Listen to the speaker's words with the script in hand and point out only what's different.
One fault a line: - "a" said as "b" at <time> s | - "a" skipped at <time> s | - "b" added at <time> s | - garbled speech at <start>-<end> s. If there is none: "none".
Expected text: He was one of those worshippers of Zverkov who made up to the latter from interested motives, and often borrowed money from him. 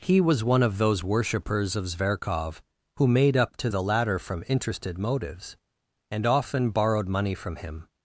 none